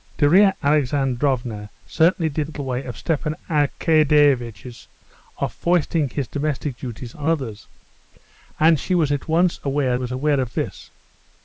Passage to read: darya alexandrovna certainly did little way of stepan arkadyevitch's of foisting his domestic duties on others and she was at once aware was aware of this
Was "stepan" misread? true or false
false